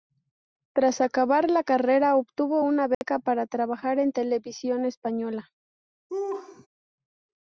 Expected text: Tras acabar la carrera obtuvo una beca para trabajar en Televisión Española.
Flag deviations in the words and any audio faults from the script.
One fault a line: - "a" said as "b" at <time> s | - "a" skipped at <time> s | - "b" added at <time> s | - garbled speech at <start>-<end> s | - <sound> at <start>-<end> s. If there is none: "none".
- dropout at 2.9-3.0 s
- laugh at 6.1-6.7 s